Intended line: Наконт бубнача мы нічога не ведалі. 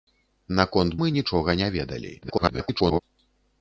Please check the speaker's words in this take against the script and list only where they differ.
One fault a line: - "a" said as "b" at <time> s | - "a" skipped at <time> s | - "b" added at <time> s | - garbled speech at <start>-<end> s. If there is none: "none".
- "бубнача" skipped at 0.9 s
- garbled speech at 2.2-3.0 s